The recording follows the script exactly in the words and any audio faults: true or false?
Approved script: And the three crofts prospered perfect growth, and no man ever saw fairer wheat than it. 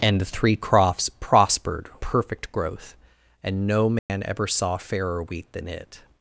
false